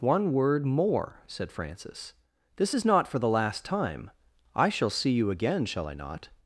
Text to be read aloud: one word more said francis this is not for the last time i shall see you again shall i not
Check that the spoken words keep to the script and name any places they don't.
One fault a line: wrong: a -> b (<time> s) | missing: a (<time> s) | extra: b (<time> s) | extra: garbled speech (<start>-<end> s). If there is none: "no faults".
no faults